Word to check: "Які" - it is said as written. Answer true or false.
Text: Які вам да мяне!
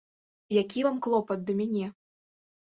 true